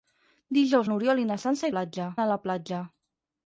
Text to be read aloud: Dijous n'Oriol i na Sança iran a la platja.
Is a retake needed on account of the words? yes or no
yes